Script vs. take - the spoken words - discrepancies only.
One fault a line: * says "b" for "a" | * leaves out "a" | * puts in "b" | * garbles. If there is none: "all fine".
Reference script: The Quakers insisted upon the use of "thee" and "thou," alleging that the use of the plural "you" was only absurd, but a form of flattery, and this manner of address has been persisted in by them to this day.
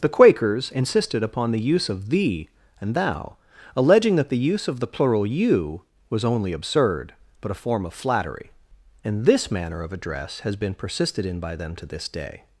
all fine